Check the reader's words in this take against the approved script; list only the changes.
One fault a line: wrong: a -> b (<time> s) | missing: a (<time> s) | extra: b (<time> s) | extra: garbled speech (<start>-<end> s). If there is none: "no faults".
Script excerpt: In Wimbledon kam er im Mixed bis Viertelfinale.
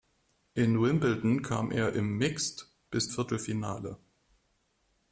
no faults